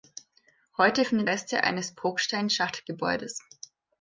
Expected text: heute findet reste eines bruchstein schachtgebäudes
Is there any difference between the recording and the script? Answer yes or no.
no